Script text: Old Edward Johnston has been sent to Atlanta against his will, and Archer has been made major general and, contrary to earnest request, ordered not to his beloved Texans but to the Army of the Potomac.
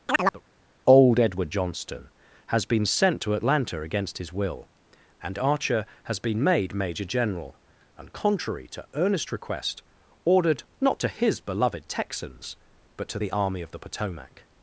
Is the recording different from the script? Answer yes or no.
no